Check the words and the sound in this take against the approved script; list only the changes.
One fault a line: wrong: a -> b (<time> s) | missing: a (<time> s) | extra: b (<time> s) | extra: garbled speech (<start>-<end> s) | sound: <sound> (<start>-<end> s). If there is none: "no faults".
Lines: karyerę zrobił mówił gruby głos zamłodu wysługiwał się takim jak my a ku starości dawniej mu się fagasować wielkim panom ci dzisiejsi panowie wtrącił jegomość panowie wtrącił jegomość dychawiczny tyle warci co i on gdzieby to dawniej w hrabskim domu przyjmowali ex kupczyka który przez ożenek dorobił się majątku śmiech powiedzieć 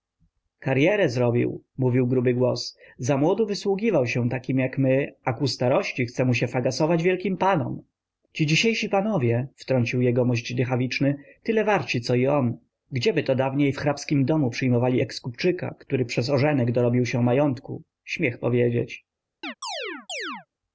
wrong: dawniej -> chce (6.0 s)
missing: panowie wtrącił jegomość (10.5 s)
sound: chirp (19.4-20.5 s)